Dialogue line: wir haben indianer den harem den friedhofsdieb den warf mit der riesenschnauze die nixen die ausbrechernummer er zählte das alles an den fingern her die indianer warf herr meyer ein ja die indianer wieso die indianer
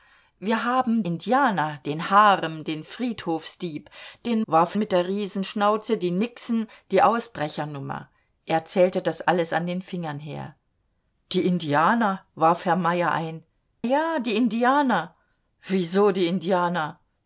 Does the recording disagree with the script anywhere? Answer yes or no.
no